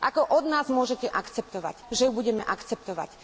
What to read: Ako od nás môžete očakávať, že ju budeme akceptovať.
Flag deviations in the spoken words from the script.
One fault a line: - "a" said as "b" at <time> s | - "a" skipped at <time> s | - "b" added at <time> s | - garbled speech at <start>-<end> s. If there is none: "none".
- "očakávať" said as "akceptovať" at 1.1 s